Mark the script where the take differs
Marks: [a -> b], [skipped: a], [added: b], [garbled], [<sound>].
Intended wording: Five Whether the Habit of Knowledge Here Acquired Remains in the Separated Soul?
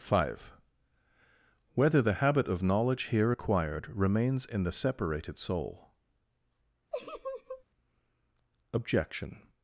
Five Whether the Habit of Knowledge Here Acquired Remains in the Separated Soul? [laugh] [added: Objection]